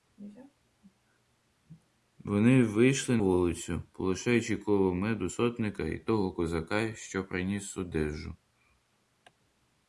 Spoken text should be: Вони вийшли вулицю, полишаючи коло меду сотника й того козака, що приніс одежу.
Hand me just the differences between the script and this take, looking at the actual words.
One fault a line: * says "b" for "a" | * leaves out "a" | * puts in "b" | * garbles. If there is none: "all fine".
all fine